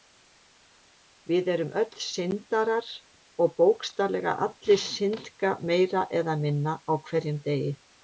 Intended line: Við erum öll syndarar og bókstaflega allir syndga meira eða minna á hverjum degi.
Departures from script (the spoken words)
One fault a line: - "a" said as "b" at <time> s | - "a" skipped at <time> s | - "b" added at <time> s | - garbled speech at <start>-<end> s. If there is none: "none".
none